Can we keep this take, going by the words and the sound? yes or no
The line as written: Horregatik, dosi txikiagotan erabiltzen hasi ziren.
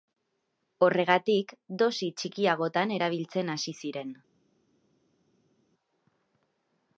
yes